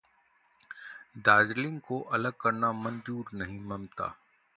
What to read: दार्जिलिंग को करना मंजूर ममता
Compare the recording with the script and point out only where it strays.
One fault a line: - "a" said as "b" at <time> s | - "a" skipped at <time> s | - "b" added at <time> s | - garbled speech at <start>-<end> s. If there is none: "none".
- "अलग" added at 2.1 s
- "नहीं" added at 3.3 s